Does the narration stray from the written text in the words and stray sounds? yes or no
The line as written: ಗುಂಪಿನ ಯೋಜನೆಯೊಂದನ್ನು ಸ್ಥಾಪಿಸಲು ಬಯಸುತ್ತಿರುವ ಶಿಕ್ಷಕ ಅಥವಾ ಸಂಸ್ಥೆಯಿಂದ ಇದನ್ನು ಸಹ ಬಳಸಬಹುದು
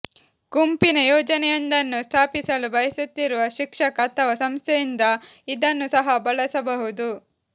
no